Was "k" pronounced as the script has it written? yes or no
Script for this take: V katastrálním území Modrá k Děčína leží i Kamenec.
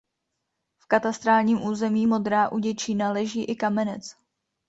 no